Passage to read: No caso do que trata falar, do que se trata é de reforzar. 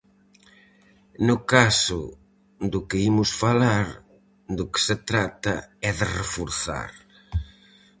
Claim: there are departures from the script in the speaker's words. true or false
true